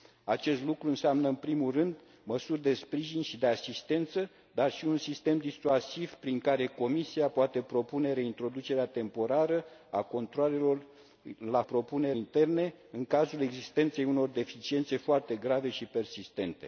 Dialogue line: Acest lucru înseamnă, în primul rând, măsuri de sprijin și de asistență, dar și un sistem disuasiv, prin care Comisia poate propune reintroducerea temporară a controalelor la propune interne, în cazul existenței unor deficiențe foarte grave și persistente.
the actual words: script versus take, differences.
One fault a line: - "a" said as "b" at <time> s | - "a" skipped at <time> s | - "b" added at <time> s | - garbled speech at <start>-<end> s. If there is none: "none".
none